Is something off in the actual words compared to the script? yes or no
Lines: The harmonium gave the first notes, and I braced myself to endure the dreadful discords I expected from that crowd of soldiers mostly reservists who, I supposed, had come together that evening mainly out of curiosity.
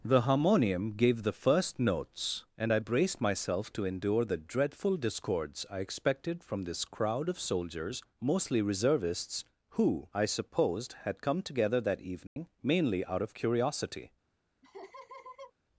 yes